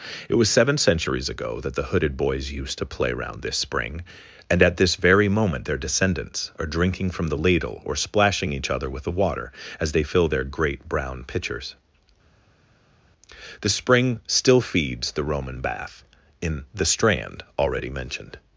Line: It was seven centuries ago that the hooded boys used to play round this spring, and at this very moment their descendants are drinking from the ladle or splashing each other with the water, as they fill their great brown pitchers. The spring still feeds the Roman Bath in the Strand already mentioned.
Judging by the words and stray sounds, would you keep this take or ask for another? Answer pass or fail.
pass